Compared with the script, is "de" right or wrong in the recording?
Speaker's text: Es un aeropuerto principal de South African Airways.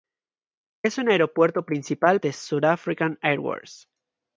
right